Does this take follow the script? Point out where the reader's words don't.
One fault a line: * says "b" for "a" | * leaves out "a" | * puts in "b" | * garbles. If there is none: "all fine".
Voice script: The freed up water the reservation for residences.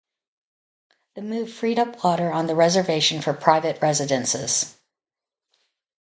* puts in "move"
* puts in "on"
* puts in "private"